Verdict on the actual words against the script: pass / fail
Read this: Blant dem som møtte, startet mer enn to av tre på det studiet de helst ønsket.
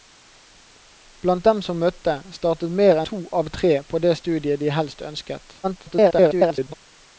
fail